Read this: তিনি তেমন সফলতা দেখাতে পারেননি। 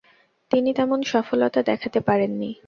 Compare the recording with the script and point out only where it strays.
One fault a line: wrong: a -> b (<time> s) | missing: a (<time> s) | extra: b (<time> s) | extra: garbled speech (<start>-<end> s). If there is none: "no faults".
no faults